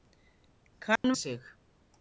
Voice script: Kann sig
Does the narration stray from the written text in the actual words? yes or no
no